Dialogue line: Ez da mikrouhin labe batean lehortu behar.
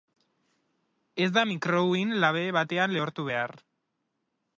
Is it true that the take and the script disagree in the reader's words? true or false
false